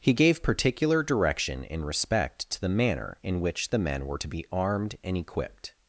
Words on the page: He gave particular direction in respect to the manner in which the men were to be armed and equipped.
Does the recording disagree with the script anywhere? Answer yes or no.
no